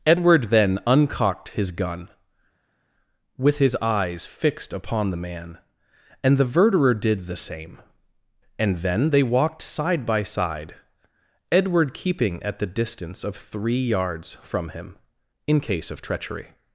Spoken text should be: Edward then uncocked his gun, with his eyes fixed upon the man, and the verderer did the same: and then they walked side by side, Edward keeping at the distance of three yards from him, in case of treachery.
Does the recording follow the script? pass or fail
pass